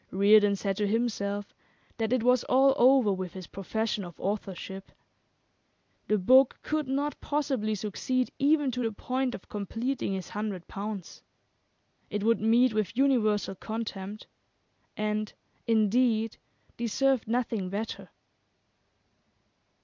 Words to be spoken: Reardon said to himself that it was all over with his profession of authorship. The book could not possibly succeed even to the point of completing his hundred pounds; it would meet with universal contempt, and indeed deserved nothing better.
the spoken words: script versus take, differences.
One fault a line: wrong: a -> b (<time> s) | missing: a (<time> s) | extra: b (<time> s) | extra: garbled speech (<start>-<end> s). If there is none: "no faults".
no faults